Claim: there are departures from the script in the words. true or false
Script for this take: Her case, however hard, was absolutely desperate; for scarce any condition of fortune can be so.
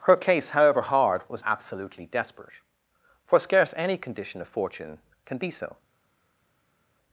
false